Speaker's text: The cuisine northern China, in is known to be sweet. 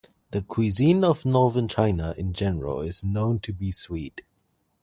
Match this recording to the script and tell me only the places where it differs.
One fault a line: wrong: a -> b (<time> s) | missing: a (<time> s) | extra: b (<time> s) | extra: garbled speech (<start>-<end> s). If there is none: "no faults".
extra: of (1.0 s)
extra: general (2.3 s)